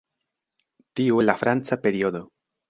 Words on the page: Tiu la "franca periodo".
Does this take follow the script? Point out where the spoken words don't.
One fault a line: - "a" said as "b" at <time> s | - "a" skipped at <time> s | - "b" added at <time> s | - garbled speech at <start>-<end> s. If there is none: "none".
none